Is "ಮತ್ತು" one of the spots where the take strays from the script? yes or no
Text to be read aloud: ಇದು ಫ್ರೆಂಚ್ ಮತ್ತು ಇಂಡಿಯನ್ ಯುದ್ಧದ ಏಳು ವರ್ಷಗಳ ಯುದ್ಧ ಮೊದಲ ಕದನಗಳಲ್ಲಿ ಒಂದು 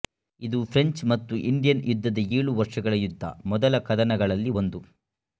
no